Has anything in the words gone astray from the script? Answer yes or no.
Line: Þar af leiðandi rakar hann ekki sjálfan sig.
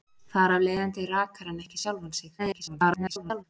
yes